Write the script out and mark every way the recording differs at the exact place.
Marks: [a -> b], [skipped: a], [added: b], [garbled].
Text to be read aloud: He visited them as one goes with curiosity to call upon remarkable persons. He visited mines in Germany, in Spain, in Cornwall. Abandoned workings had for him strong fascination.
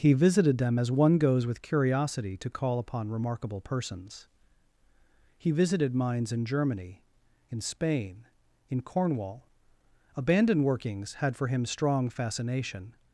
He visited them as one goes with curiosity to call upon remarkable persons. He visited mines in Germany, in Spain, in Cornwall. Abandoned workings had for him strong fascination.